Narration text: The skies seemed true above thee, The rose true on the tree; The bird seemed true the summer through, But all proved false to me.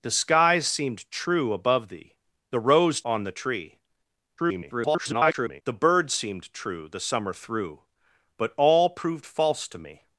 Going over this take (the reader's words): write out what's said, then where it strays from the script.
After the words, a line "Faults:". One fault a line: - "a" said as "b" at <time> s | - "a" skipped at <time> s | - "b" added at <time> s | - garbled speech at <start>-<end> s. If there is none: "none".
The skies seemed true above thee, The rose on the tree; [garbled] The bird seemed true the summer through, But all proved false to me.
Faults:
- "true" skipped at 3.0 s
- garbled speech at 4.4-5.6 s